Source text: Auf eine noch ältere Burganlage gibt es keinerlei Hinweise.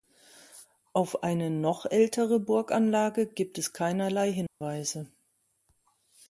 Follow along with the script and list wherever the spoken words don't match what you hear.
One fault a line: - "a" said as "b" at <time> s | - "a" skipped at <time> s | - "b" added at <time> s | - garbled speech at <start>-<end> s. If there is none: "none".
none